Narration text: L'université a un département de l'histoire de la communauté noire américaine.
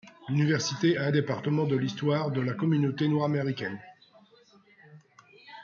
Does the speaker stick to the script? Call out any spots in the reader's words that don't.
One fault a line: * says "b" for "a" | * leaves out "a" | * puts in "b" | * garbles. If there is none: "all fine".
all fine